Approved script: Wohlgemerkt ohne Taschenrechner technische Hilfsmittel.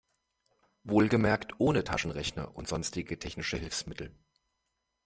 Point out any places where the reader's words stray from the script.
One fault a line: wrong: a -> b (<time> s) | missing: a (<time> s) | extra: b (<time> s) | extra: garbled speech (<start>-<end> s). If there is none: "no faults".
extra: und sonstige (2.5 s)